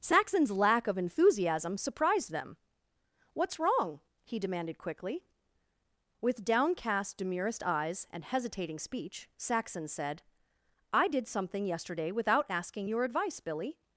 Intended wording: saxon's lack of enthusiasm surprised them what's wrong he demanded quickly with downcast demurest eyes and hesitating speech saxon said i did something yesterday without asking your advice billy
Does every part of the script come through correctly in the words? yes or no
yes